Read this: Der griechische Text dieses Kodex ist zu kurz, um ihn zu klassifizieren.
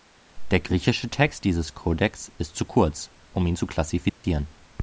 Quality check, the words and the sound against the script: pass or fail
fail